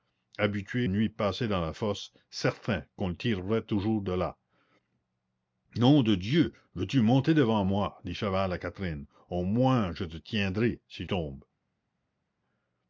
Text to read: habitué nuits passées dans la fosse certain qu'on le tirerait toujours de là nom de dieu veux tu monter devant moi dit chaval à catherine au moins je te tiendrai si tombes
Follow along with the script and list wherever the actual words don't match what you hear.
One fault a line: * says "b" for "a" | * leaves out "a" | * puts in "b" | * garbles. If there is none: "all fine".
all fine